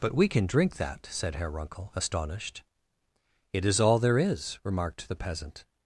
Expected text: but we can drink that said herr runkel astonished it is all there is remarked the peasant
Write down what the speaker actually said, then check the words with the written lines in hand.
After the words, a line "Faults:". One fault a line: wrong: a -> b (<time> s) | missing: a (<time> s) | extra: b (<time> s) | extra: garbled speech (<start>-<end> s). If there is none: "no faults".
but we can drink that said herr runkel astonished it is all there is remarked the peasant
Faults:
no faults